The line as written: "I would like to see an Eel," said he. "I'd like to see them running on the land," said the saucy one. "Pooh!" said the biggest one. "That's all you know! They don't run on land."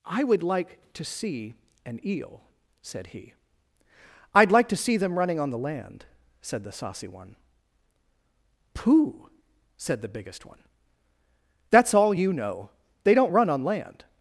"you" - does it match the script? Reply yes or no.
yes